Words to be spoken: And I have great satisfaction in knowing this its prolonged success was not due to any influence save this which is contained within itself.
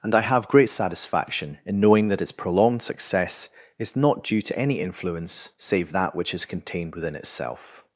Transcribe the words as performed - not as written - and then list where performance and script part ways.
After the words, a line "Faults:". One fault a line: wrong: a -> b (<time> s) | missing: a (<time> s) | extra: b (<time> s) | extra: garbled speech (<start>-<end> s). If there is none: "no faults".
And I have great satisfaction in knowing that its prolonged success is not due to any influence save that which is contained within itself.
Faults:
wrong: this -> that (2.1 s)
wrong: was -> is (3.8 s)
wrong: this -> that (5.9 s)